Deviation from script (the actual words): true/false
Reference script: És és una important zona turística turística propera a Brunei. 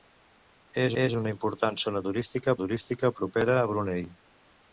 false